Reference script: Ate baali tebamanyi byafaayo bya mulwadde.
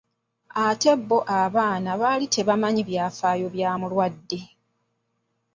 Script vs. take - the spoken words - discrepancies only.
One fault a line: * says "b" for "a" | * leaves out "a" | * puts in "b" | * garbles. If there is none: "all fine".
* puts in "bo abaana"